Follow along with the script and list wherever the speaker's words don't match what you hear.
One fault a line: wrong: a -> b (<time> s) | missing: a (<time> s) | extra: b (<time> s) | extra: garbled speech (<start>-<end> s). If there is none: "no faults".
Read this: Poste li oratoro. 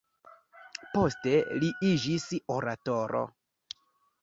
extra: iĝis (1.9 s)